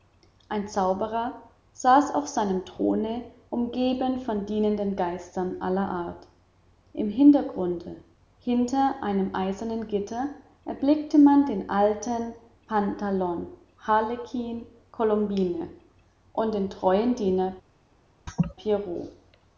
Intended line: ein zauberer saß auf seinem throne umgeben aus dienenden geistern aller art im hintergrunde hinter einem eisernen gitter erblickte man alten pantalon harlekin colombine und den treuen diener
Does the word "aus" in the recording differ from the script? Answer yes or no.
yes